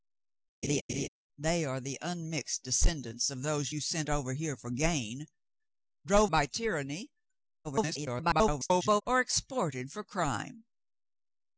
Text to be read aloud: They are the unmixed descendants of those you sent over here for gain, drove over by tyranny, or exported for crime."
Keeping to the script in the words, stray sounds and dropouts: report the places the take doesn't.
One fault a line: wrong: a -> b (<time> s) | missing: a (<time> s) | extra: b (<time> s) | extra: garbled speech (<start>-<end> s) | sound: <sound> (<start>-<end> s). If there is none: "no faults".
sound: laugh (0.6-1.1 s)
missing: over (6.3 s)
extra: garbled speech (7.6-9.0 s)